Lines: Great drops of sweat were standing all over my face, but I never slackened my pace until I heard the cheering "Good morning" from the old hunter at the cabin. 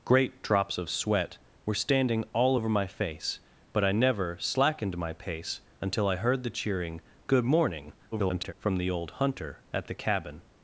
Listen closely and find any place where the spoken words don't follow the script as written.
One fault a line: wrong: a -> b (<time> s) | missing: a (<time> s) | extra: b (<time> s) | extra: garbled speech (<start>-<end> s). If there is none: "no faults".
extra: garbled speech (8.1-8.5 s)